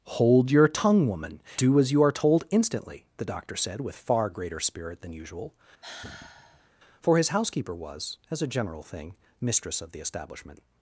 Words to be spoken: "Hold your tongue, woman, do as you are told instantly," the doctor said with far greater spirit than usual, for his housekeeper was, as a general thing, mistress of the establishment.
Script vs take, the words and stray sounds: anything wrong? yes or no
yes